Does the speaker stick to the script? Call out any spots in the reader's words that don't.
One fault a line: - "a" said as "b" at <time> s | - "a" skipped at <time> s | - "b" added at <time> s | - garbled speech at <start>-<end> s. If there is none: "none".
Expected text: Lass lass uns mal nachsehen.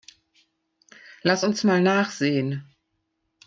- "lass" skipped at 1.4 s